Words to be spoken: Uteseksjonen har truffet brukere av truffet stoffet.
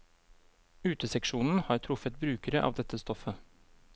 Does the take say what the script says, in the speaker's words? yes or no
no